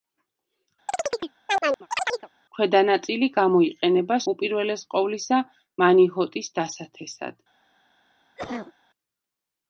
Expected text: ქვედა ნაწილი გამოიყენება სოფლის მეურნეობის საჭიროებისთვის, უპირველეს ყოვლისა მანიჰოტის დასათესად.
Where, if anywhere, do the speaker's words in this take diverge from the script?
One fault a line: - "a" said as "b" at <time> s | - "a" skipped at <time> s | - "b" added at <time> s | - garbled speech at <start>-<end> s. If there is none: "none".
- "სოფლის მეურნეობის საჭიროებისთვის" skipped at 4.2 s